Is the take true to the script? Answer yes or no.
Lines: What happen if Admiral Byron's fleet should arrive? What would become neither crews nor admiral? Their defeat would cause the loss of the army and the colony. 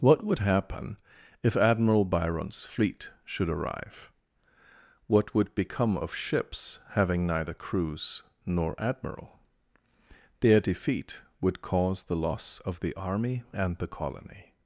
no